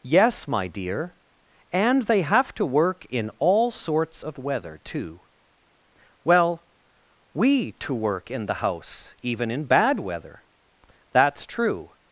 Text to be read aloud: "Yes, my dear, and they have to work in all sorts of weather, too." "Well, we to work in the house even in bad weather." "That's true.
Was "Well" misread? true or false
false